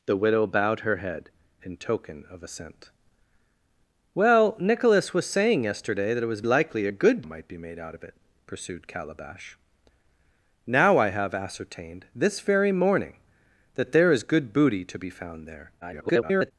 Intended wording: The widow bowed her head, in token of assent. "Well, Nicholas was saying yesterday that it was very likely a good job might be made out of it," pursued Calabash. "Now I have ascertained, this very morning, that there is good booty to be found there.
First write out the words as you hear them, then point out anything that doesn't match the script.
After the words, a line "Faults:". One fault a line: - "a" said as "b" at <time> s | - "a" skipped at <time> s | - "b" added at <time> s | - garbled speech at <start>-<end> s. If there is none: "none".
The widow bowed her head, in token of assent. "Well, Nicholas was saying yesterday that it was likely a good might be made out of it," pursued Calabash. "Now I have ascertained, this very morning, that there is good booty to be found there. [garbled]
Faults:
- "very" skipped at 6.4 s
- "job" skipped at 7.2 s
- garbled speech at 15.8-16.5 s